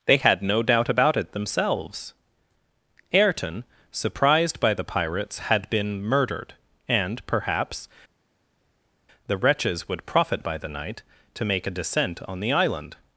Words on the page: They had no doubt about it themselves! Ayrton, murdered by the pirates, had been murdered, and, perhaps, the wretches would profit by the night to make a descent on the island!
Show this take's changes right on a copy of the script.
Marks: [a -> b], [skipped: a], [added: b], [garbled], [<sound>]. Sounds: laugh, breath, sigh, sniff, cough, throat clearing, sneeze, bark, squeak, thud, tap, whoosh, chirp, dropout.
They had no doubt about it themselves! Ayrton, [murdered -> surprised] by the pirates, had been murdered, and, perhaps, the wretches would profit by the night to make a descent on the island!